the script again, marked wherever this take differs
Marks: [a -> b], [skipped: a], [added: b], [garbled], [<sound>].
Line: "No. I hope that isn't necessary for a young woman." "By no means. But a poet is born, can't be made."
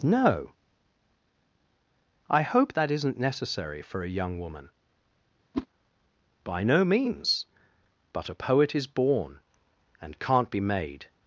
"No. I hope that isn't necessary for a young woman." [whoosh] "By no means. But a poet is born, [added: and] can't be made."